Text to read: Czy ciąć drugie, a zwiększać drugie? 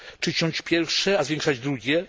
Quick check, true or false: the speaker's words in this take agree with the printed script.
false